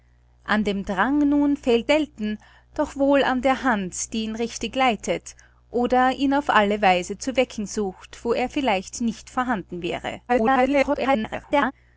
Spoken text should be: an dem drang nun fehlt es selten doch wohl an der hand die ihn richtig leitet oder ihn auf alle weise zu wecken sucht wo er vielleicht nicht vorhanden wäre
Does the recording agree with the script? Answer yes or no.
no